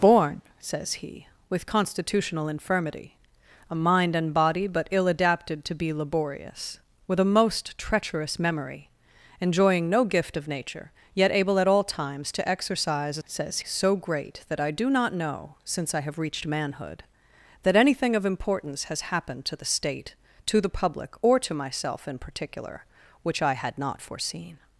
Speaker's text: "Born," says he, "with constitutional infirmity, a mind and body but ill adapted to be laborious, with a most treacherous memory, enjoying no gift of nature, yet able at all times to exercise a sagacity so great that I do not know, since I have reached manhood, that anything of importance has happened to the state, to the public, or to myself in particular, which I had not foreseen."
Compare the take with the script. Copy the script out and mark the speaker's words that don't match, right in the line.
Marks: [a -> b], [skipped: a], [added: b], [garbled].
"Born," says he, "with constitutional infirmity, a mind and body but ill adapted to be laborious, with a most treacherous memory, enjoying no gift of nature, yet able at all times to exercise a [sagacity -> says] so great that I do not know, since I have reached manhood, that anything of importance has happened to the state, to the public, or to myself in particular, which I had not foreseen."